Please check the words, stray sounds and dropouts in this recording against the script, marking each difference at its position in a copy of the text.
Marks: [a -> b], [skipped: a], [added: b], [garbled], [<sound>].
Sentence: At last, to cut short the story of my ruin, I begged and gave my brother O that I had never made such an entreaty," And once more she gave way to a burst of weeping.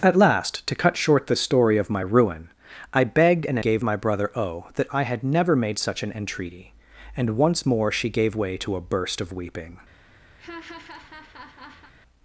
At last, to cut short the story of my ruin, I begged and gave my brother O that I had never made such an entreaty," And once more she gave way to a burst of weeping. [laugh]